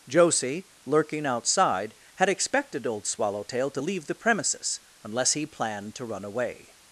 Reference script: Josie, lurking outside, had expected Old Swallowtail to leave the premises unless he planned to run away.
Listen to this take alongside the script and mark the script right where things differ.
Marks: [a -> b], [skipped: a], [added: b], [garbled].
Josie, lurking outside, had expected Old Swallowtail to leave the premises unless he planned to run away.